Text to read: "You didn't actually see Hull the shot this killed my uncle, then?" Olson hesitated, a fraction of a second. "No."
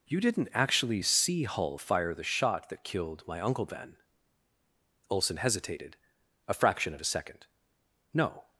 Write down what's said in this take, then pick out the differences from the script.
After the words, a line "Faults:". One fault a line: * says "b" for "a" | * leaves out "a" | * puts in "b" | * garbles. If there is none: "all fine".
"You didn't actually see Hull fire the shot that killed my uncle, then?" Olson hesitated, a fraction of a second. "No."
Faults:
* puts in "fire"
* says "that" for "this"